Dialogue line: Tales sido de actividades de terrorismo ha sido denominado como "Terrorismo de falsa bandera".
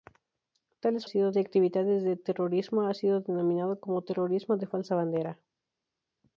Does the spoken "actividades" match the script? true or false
true